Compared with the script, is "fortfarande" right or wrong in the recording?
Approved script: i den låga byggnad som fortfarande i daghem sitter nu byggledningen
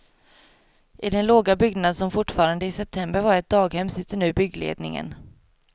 right